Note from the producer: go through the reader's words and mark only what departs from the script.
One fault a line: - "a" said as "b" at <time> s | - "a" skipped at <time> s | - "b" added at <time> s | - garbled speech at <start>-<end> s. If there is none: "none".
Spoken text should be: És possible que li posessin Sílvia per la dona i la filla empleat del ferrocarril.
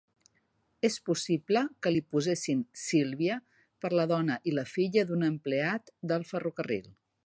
- "d'un" added at 5.1 s